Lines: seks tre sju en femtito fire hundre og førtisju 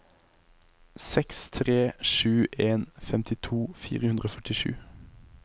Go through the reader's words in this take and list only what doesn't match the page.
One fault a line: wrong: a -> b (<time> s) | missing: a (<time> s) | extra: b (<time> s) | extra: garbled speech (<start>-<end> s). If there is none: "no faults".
no faults